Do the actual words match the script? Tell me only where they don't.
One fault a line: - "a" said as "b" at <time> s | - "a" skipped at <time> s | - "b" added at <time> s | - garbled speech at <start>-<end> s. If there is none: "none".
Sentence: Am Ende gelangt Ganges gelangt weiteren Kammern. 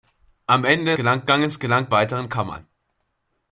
none